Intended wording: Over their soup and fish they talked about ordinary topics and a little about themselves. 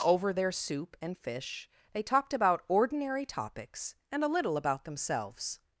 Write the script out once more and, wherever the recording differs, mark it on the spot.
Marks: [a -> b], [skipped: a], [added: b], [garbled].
Over their soup and fish they talked about ordinary topics and a little about themselves.